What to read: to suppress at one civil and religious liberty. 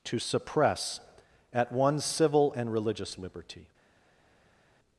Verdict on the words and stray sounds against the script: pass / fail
pass